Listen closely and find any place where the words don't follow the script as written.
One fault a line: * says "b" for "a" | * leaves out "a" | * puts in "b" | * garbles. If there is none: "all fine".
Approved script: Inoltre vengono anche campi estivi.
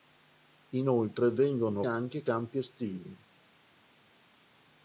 all fine